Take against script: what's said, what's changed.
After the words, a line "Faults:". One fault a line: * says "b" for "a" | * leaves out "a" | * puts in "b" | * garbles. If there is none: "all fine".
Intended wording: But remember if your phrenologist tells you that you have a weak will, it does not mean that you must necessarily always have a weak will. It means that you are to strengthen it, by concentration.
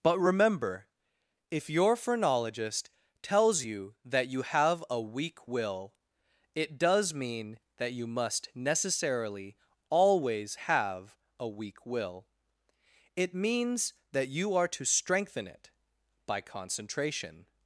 But remember if your phrenologist tells you that you have a weak will, it does mean that you must necessarily always have a weak will. It means that you are to strengthen it, by concentration.
Faults:
* leaves out "not"